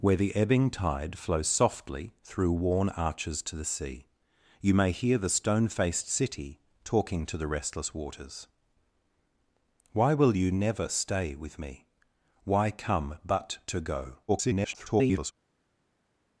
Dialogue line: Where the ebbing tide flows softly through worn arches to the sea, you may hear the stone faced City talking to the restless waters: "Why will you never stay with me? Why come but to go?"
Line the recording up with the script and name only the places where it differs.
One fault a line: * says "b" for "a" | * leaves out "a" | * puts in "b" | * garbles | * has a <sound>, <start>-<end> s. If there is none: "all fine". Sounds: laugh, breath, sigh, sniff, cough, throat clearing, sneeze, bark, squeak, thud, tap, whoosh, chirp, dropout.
* garbles